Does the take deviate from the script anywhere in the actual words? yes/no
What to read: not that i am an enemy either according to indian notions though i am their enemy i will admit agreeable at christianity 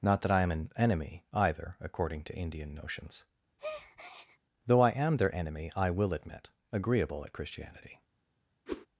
no